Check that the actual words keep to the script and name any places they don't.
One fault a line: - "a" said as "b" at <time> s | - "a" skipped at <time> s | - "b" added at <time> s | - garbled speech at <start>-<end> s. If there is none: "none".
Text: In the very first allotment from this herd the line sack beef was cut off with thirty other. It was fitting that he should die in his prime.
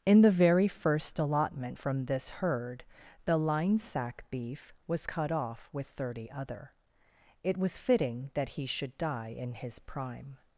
none